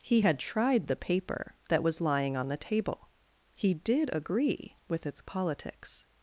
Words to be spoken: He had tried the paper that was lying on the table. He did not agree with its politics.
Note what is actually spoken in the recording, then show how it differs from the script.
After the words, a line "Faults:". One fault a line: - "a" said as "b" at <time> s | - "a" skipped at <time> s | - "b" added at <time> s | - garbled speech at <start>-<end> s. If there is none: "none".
He had tried the paper that was lying on the table. He did agree with its politics.
Faults:
- "not" skipped at 4.1 s